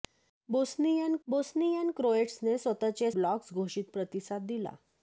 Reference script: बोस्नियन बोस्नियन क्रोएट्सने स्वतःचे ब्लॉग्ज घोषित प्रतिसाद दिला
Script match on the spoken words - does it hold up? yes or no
yes